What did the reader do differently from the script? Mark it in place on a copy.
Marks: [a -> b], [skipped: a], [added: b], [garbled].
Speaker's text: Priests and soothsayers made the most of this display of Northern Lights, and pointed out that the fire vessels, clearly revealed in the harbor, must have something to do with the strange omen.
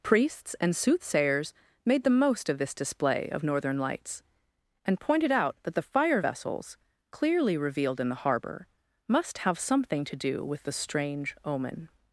Priests and soothsayers made the most of this display of Northern Lights, and pointed out that the fire vessels, clearly revealed in the harbor, must have something to do with the strange omen.